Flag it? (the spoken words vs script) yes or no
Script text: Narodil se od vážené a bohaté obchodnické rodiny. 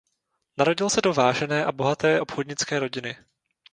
yes